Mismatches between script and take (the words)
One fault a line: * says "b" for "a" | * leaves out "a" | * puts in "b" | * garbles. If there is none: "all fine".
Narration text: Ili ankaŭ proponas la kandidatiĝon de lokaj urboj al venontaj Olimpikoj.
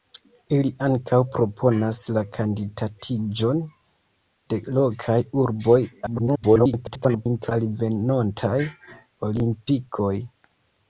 * garbles